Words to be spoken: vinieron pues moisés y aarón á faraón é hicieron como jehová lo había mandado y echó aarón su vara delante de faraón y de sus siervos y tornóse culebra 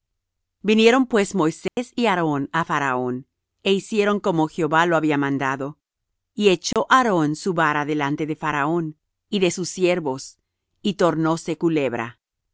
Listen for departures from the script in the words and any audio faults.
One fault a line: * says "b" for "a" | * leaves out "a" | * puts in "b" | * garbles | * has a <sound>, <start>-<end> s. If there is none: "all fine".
* has a dropout, 1.7-1.8 s
* has a dropout, 6.7-6.8 s